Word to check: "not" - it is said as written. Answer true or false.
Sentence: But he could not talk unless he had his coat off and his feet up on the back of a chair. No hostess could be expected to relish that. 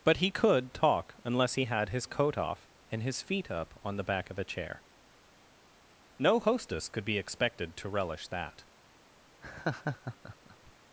false